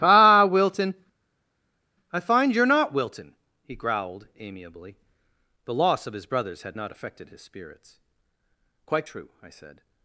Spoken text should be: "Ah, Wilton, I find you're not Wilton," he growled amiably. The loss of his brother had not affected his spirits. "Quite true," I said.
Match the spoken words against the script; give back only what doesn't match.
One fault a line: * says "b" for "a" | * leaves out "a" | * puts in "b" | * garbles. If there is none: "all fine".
* says "brothers" for "brother"